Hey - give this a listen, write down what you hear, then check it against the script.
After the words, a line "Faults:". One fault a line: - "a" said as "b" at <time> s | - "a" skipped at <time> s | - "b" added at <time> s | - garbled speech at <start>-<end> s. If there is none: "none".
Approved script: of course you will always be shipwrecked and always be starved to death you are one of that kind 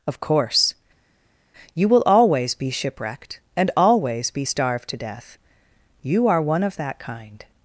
of course you will always be shipwrecked and always be starved to death you are one of that kind
Faults:
none